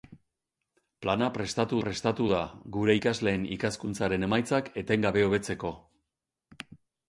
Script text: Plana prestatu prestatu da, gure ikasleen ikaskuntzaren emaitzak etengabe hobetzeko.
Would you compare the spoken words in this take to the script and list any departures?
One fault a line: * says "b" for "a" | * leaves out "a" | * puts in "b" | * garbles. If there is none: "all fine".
all fine